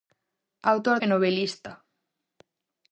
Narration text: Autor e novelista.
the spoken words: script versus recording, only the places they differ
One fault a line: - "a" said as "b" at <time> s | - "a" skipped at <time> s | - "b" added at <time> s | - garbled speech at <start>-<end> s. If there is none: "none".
none